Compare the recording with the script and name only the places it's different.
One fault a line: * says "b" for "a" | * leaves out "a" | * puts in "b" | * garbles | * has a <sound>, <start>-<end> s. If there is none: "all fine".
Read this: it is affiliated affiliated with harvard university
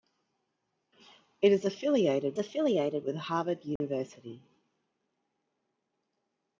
* has a dropout, 3.8-3.8 s